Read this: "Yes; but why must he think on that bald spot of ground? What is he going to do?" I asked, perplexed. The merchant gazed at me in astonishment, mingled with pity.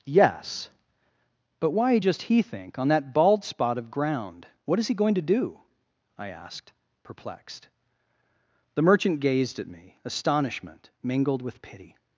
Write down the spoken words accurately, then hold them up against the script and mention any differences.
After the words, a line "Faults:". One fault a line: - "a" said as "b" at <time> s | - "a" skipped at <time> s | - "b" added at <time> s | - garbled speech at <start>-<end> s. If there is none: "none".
"Yes; but why just he think on that bald spot of ground? What is he going to do?" I asked, perplexed. The merchant gazed at me astonishment, mingled with pity.
Faults:
- "must" said as "just" at 2.0 s
- "in" skipped at 10.0 s